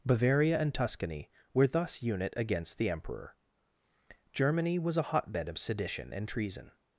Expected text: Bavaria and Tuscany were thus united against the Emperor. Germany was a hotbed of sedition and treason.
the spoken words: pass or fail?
fail